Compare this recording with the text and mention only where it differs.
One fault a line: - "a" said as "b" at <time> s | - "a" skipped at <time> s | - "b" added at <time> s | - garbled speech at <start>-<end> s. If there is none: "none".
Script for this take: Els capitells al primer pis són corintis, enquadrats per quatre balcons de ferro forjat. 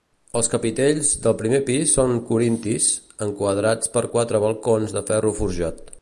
- "al" said as "del" at 1.2 s